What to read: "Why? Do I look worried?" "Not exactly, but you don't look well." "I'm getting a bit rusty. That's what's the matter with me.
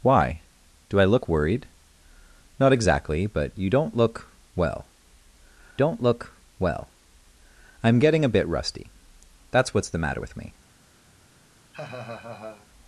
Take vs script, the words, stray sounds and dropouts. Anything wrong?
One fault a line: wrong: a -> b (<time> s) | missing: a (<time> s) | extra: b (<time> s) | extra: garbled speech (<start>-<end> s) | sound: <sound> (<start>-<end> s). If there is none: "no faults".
extra: don't look well (5.8 s)
sound: laugh (11.7-12.7 s)